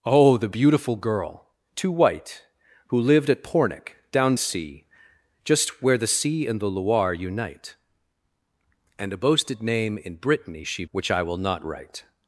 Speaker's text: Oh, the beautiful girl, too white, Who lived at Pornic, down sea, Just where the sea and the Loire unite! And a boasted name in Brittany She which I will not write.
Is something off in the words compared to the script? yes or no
no